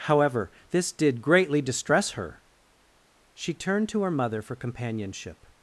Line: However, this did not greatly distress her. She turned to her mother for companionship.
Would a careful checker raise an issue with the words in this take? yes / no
yes